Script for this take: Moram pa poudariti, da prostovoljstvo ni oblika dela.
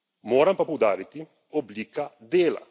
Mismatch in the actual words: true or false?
true